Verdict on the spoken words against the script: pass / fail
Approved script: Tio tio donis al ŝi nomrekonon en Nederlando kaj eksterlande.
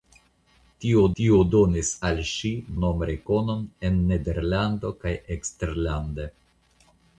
pass